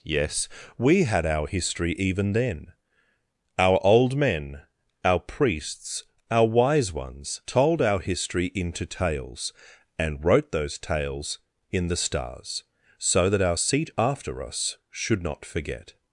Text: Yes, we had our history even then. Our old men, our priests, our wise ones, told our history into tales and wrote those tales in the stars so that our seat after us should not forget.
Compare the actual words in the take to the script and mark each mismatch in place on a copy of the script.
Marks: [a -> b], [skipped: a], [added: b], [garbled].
Yes, we had our history even then. Our old men, our priests, our wise ones, told our history into tales and wrote those tales in the stars so that our seat after us should not forget.